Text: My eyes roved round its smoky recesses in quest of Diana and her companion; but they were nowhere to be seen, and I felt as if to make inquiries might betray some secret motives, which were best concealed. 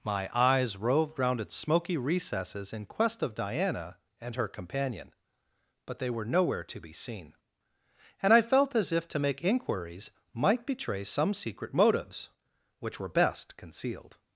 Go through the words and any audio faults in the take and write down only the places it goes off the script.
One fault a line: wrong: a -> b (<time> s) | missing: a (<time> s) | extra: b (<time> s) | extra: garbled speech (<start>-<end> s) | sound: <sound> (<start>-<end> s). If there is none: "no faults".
no faults